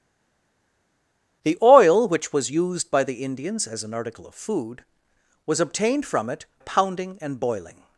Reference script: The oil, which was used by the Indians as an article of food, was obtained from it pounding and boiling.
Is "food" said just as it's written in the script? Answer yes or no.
yes